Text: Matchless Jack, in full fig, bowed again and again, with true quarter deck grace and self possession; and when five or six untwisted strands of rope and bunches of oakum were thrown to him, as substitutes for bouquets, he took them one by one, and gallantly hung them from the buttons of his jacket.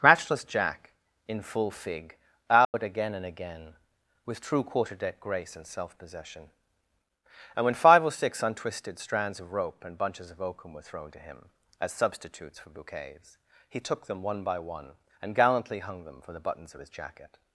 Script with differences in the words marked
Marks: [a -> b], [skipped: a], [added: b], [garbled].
Matchless Jack, in full fig, bowed again and again, with true quarter deck grace and self possession; and when five or six untwisted strands of rope and bunches of oakum were thrown to him, as substitutes for bouquets, he took them one by one, and gallantly hung them [from -> for] the buttons of his jacket.